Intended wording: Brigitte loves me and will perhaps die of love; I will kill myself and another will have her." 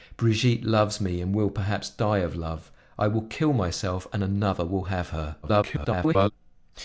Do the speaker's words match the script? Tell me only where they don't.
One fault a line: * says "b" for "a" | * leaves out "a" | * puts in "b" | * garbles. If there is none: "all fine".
* garbles